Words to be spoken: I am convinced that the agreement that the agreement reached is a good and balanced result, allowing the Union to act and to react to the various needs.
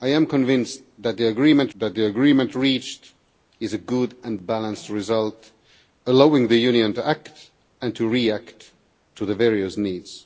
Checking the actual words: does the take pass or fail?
pass